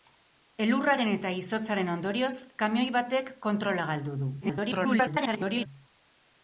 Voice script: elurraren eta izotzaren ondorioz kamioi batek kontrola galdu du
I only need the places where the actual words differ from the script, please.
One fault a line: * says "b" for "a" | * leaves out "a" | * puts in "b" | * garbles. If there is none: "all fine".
* garbles